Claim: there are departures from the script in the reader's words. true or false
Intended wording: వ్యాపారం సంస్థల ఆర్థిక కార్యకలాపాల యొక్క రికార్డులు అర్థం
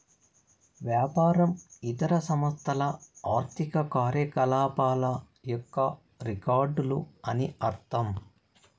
true